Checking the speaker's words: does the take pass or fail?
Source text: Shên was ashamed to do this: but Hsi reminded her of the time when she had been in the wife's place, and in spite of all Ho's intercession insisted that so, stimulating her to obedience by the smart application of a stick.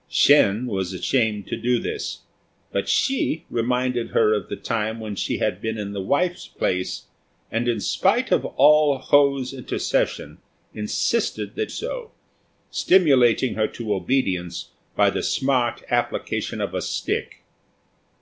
pass